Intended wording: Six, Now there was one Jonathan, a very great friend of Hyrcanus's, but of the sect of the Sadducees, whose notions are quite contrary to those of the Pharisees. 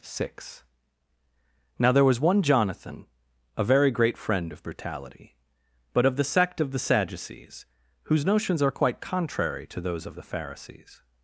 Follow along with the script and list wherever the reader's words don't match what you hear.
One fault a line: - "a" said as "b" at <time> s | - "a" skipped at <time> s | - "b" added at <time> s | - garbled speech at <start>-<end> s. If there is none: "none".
- "Hyrcanus's" said as "Brutality" at 4.6 s